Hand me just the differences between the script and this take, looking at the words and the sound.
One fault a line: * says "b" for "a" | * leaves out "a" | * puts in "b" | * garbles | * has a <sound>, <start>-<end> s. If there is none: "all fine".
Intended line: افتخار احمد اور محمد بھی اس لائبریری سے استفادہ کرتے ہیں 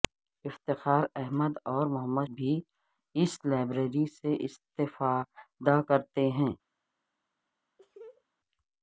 * has a laugh, 7.8-8.2 s